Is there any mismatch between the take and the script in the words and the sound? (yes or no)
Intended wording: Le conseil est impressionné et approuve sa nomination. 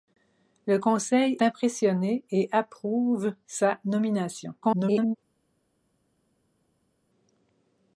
yes